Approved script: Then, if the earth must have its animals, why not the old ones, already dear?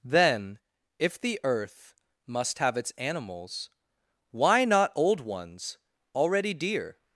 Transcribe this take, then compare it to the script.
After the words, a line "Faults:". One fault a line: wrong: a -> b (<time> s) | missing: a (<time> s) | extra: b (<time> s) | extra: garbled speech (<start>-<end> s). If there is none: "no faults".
Then, if the earth must have its animals, why not old ones, already dear?
Faults:
missing: the (4.9 s)